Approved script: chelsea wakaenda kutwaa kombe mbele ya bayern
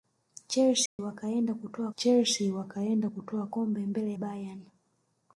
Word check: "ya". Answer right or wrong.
wrong